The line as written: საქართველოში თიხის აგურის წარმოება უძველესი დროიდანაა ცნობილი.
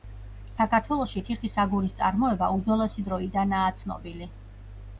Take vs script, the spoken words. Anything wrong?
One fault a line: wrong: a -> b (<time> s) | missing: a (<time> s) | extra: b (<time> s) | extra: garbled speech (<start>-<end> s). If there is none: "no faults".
no faults